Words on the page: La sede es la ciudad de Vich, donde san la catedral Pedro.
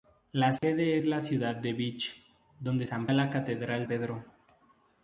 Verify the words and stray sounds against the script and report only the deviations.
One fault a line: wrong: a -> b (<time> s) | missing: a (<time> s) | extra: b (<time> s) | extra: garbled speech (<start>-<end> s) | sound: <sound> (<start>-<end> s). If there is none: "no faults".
sound: dropout (0.6-0.6 s)